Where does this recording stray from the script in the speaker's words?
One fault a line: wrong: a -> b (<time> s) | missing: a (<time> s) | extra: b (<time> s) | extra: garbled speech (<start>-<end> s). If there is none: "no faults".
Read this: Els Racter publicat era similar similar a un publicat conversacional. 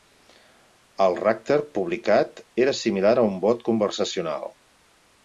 wrong: Els -> El (1.0 s)
missing: similar (3.1 s)
wrong: publicat -> bot (3.5 s)